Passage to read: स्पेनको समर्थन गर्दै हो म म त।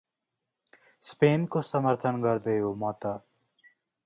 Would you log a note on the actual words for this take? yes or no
yes